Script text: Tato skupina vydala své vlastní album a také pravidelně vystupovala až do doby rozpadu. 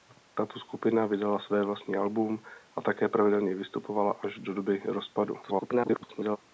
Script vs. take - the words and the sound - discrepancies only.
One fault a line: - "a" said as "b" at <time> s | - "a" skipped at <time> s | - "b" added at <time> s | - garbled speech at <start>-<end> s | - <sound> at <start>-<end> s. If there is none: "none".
- garbled speech at 5.4-6.4 s